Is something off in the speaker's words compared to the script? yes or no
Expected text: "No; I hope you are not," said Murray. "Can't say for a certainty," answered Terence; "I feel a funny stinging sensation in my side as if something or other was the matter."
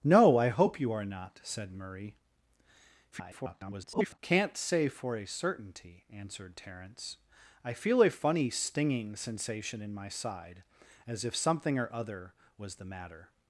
yes